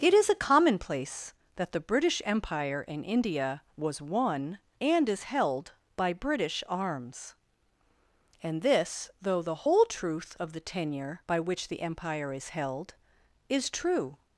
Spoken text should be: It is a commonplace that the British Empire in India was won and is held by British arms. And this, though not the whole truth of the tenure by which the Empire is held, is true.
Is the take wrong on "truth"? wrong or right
right